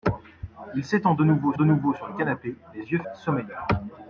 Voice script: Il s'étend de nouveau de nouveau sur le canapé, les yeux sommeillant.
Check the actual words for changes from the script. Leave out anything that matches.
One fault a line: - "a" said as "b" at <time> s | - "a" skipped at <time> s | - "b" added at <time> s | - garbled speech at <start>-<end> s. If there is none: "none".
none